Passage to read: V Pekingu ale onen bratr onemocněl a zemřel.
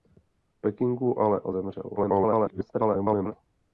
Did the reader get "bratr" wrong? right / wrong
wrong